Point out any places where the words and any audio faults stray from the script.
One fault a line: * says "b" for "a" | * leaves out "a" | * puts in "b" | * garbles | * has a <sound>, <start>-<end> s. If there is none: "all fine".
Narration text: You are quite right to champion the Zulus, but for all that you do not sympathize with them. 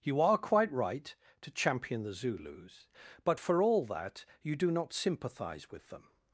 all fine